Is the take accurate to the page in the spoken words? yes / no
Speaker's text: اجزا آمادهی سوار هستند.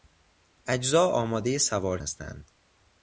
yes